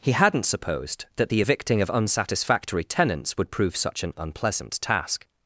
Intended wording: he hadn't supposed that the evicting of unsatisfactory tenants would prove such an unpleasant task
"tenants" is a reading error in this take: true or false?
false